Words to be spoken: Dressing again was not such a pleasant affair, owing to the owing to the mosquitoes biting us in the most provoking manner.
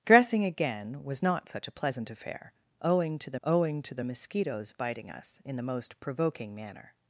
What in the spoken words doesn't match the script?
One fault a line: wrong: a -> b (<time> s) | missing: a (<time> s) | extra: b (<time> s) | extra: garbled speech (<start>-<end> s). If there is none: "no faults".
no faults